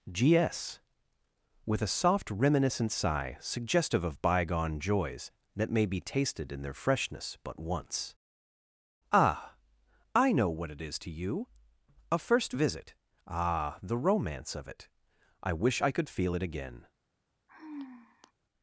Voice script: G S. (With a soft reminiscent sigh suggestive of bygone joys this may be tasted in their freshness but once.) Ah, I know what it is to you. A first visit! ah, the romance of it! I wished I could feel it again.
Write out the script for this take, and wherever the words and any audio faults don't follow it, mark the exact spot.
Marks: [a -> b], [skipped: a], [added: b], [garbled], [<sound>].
G S. (With a soft reminiscent sigh suggestive of bygone joys [this -> that] may be tasted in their freshness but once.) Ah, I know what it is to you. A first visit! ah, the romance of it! I [wished -> wish] I could feel it again. [sigh]